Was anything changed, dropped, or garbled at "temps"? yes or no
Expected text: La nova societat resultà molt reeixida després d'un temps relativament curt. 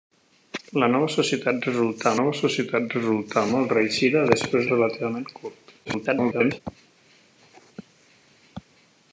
yes